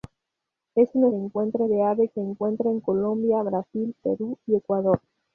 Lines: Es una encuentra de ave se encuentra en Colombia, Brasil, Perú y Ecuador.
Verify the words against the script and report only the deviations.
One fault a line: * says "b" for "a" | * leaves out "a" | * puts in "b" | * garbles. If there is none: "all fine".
all fine